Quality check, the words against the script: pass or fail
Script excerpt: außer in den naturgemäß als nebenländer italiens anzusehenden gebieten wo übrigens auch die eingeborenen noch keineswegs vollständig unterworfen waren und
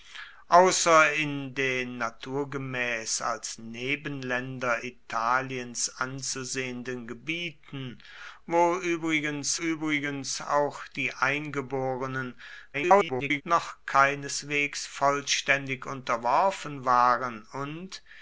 fail